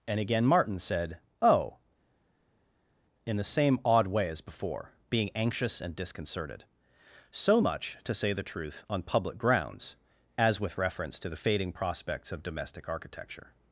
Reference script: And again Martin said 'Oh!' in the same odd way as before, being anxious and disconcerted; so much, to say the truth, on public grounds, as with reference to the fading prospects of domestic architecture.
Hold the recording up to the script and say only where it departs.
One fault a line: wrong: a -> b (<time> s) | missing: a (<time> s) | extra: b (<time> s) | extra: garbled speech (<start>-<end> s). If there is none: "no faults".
no faults